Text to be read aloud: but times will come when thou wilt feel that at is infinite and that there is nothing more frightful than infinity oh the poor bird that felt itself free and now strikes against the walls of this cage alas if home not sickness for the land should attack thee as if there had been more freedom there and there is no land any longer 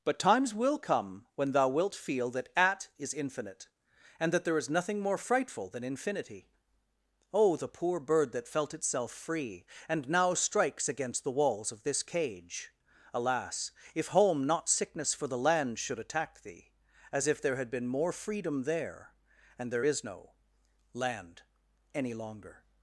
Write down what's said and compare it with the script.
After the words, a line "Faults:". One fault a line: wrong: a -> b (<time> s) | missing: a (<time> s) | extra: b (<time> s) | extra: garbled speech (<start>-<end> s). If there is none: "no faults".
but times will come when thou wilt feel that at is infinite and that there is nothing more frightful than infinity oh the poor bird that felt itself free and now strikes against the walls of this cage alas if home not sickness for the land should attack thee as if there had been more freedom there and there is no land any longer
Faults:
no faults